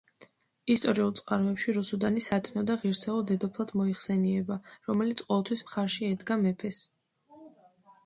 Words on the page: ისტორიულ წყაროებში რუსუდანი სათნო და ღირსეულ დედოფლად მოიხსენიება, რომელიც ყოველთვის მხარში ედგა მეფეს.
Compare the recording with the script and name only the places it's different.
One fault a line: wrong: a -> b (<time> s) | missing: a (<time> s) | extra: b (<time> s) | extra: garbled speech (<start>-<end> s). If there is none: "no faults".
no faults